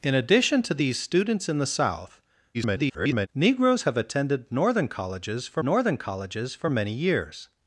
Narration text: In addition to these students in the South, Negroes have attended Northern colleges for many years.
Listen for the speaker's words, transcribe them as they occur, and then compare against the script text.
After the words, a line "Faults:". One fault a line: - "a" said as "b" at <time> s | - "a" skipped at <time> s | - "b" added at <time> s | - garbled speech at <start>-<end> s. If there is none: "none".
In addition to these students in the South, [garbled] Negroes have attended Northern colleges for Northern colleges for many years.
Faults:
- garbled speech at 2.5-3.3 s
- "Northern colleges for" added at 5.6 s